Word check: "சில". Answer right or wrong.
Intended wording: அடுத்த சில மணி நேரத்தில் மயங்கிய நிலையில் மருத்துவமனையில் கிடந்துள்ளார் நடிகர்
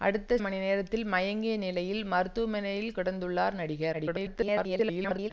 wrong